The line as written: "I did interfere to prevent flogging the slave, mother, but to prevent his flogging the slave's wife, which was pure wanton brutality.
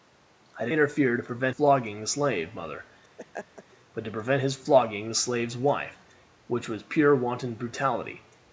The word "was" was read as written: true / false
true